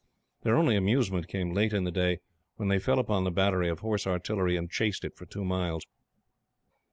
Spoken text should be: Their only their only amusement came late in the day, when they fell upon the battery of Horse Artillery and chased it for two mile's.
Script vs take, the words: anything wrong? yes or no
yes